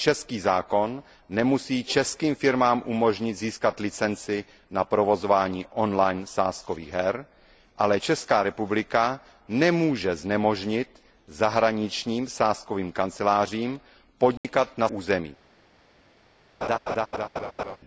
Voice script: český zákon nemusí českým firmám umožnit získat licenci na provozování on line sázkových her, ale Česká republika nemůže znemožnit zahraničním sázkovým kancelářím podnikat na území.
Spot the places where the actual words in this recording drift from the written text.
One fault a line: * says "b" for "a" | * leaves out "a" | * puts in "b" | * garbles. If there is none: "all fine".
all fine